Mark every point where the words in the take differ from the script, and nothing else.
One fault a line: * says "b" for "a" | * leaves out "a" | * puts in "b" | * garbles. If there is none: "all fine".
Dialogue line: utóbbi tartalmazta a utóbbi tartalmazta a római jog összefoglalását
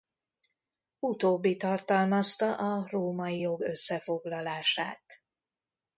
* leaves out "utóbbi tartalmazta a"